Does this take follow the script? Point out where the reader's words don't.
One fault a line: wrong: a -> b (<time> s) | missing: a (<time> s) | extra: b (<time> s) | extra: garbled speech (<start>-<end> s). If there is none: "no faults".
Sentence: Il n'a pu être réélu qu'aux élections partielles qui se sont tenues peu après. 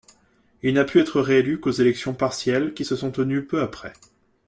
no faults